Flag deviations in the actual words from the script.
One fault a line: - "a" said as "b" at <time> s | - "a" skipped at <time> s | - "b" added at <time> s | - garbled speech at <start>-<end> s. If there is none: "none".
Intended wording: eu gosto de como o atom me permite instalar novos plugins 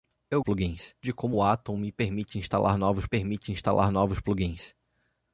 - "gosto" said as "plugins" at 0.4 s
- "permite instalar novos" added at 3.0 s